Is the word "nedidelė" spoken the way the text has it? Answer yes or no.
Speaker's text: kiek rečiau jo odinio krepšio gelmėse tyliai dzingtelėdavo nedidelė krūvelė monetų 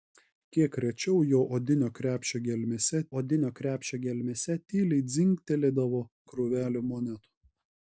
no